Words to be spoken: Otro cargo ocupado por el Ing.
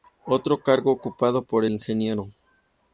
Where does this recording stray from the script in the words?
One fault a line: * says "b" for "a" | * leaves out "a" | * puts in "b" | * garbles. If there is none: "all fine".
* leaves out "el"